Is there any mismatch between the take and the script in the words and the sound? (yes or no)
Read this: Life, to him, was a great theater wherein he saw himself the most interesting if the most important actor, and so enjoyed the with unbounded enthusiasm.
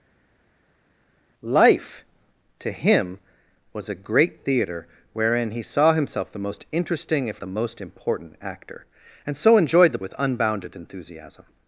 no